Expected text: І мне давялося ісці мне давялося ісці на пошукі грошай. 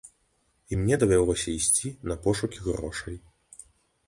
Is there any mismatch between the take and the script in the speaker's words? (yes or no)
yes